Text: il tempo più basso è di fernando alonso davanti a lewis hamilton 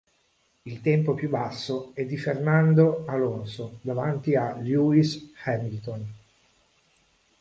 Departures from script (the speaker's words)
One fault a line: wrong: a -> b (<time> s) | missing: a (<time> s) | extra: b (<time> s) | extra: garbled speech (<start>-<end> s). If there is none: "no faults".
no faults